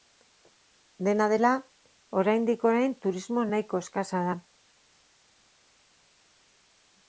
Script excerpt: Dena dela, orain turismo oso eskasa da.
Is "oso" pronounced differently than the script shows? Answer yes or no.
yes